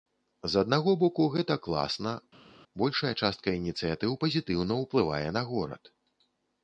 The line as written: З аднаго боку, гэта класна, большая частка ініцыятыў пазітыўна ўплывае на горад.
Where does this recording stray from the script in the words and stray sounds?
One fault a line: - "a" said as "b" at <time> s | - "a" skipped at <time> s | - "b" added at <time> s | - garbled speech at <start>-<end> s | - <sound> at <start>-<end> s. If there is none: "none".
none